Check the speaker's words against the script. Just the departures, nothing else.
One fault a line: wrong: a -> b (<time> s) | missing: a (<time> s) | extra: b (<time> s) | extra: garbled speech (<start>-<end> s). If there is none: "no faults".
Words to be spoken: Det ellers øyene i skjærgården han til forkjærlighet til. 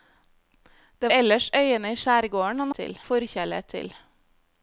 no faults